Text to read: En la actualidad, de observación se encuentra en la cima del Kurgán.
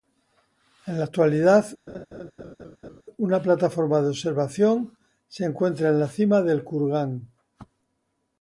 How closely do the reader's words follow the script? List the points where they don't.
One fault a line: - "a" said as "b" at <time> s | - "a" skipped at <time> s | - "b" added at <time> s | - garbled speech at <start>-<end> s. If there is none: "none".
- "una plataforma" added at 3.2 s